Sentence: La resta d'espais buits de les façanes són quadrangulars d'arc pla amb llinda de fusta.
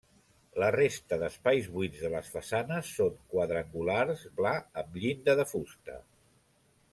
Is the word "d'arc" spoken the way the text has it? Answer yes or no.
no